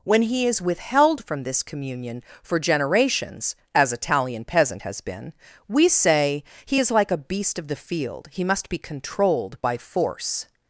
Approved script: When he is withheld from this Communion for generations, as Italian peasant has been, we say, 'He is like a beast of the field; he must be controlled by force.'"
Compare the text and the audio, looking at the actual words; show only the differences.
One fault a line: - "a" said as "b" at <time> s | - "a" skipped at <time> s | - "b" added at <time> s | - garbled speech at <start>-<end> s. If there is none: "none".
none